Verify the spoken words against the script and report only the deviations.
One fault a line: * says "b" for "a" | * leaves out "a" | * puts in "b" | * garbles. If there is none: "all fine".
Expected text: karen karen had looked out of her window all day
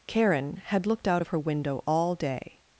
* leaves out "karen"